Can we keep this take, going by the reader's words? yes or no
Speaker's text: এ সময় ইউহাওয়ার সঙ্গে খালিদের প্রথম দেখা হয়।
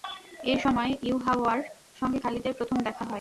yes